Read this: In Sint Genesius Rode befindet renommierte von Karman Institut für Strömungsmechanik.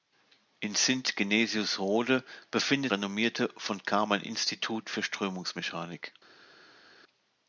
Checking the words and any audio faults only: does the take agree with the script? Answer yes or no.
yes